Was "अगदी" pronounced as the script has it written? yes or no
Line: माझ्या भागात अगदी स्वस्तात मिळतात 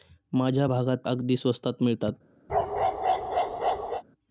yes